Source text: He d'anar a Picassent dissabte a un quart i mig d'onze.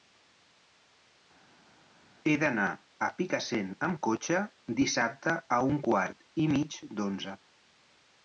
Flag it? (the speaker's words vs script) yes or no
yes